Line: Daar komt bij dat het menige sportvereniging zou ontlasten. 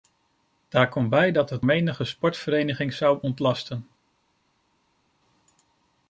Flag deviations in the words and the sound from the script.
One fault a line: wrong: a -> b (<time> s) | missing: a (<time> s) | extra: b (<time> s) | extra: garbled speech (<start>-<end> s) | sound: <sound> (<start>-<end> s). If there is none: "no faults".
no faults